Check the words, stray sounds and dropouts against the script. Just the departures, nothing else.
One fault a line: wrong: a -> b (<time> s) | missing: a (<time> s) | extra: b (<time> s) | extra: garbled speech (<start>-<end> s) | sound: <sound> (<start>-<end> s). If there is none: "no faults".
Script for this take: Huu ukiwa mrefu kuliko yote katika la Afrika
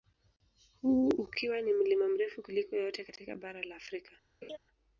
extra: ni mlima (1.6 s)
extra: bara (3.4 s)
sound: laugh (4.4-4.6 s)